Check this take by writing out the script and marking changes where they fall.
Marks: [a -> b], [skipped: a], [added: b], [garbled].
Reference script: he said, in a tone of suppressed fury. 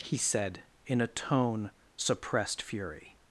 he said, in a tone [skipped: of] suppressed fury.